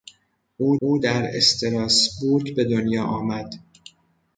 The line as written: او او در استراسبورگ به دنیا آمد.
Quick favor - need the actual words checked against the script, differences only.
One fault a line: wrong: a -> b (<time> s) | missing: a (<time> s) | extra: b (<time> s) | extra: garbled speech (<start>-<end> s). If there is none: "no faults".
no faults